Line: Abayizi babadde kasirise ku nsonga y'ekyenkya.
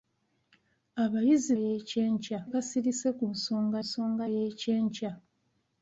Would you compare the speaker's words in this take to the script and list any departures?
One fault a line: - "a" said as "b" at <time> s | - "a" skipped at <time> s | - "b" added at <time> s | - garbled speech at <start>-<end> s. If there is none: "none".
- "babadde" said as "y'ekyenkya" at 1.6 s
- "nsonga" added at 3.8 s